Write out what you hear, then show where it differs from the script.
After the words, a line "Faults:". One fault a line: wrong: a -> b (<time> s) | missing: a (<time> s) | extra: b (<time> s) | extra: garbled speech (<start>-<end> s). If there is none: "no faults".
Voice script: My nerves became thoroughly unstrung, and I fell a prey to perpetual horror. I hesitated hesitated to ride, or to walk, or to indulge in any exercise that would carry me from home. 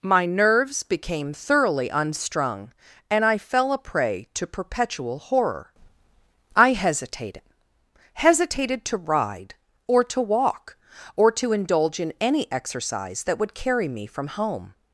My nerves became thoroughly unstrung, and I fell a prey to perpetual horror. I hesitated hesitated to ride, or to walk, or to indulge in any exercise that would carry me from home.
Faults:
no faults